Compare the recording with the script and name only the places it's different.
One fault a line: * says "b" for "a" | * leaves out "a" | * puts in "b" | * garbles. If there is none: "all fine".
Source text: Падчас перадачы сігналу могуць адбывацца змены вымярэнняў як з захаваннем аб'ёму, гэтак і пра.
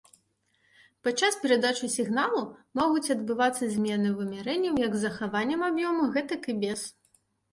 * says "без" for "пра"